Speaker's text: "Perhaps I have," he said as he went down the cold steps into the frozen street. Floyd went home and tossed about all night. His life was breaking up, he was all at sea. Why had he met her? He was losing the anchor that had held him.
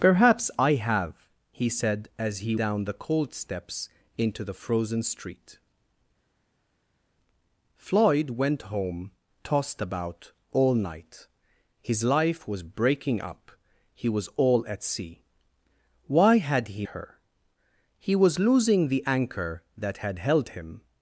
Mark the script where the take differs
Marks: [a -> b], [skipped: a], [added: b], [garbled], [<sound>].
"Perhaps I have," he said as he [skipped: went] down the cold steps into the frozen street. Floyd went home [skipped: and] tossed about all night. His life was breaking up, he was all at sea. Why had he [skipped: met] her? He was losing the anchor that had held him.